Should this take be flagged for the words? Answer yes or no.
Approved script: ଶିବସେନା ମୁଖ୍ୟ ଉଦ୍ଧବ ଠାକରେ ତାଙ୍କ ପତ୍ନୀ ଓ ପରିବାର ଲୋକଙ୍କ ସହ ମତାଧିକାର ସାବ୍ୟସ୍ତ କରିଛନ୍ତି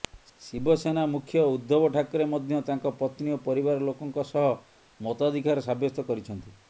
yes